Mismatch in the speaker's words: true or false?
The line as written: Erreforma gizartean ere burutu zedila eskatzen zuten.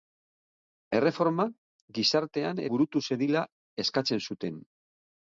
true